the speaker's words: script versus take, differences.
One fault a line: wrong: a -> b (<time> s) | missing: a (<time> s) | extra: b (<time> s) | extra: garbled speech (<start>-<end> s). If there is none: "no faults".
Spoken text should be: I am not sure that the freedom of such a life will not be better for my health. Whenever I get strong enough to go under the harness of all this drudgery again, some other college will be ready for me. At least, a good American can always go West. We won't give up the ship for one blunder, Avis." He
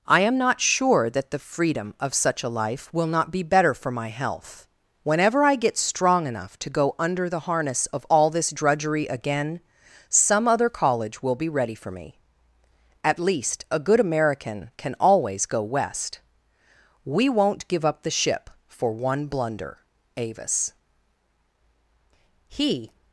no faults